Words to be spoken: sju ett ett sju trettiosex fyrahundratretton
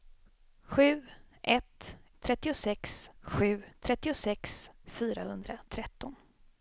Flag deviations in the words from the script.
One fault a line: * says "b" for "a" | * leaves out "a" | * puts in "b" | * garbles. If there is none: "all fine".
* says "trettiosex" for "ett"